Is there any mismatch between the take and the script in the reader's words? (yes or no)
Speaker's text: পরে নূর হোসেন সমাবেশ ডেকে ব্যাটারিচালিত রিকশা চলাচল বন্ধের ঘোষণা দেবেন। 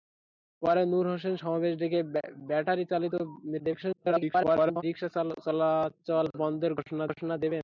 yes